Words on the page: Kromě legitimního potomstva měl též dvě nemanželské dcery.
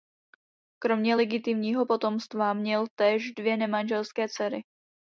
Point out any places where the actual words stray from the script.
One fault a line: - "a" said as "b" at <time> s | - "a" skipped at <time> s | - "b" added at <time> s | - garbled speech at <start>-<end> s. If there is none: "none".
none